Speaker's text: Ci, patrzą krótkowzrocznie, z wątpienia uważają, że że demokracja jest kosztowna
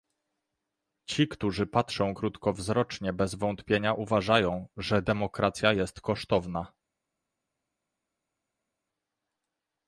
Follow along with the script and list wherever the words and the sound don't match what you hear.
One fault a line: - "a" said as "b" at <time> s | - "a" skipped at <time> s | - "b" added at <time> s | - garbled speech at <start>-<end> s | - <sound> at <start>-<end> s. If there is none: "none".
- "którzy" added at 1.3 s
- "z" said as "bez" at 3.1 s
- "że" skipped at 5.0 s